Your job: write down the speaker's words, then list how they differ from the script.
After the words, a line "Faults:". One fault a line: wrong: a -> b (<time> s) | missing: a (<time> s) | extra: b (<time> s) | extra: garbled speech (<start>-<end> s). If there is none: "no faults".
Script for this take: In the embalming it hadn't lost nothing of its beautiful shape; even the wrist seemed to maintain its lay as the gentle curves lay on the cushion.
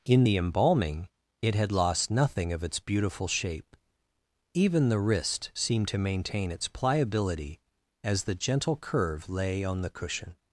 In the embalming it had lost nothing of its beautiful shape; even the wrist seemed to maintain its pliability as the gentle curve lay on the cushion.
Faults:
wrong: hadn't -> had (1.5 s)
wrong: lay -> pliability (6.7 s)
wrong: curves -> curve (8.8 s)